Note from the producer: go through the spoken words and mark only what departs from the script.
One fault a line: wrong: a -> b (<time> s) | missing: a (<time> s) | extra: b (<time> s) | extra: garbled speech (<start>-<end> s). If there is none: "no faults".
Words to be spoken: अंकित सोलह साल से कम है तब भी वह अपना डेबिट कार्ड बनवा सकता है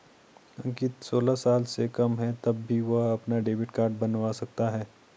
no faults